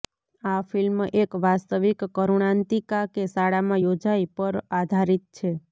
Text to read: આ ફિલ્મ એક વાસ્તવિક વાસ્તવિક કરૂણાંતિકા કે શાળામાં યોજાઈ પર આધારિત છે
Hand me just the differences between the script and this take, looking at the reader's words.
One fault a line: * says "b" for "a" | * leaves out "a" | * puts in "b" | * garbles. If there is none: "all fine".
* leaves out "વાસ્તવિક"